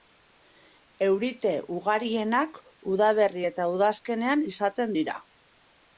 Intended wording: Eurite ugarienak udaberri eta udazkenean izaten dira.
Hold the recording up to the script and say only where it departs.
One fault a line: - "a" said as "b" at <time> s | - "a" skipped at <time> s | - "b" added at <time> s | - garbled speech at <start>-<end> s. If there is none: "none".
none